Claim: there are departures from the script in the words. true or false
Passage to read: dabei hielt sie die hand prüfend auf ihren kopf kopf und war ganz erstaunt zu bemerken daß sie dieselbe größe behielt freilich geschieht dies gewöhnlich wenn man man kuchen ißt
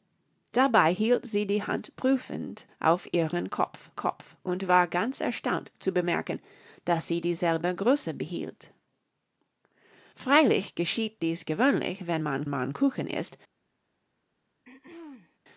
false